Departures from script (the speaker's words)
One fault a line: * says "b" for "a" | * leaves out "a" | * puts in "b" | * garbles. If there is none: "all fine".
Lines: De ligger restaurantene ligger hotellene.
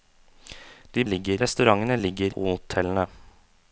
all fine